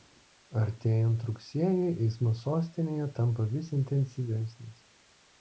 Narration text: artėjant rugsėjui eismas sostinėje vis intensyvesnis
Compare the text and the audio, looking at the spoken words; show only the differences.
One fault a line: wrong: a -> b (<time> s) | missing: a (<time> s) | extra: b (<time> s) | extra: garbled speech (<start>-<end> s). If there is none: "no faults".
extra: tampa (3.2 s)